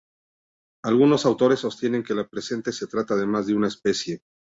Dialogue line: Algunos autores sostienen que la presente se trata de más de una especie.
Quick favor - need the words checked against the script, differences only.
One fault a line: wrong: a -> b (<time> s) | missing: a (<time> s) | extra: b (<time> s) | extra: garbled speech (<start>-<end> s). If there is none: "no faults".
no faults